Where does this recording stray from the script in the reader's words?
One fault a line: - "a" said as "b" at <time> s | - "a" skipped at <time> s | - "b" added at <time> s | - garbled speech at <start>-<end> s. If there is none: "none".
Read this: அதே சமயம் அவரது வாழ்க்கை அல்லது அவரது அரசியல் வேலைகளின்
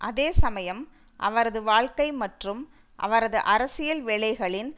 - "அல்லது" said as "மற்றும்" at 2.2 s